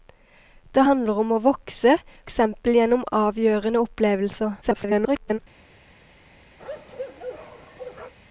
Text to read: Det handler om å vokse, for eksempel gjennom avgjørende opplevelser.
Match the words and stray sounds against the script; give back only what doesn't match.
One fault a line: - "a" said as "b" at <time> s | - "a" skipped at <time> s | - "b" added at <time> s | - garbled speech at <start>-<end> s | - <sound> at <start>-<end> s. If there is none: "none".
- "for" skipped at 2.0 s
- garbled speech at 4.6-5.4 s
- bark at 6.6-8.1 s